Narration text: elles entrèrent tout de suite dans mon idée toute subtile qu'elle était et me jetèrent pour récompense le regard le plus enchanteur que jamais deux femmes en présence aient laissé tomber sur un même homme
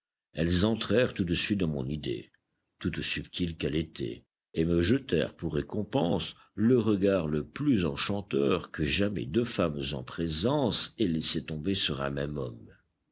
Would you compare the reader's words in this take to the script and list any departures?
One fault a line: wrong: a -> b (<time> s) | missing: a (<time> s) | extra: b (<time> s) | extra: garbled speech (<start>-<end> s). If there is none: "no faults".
no faults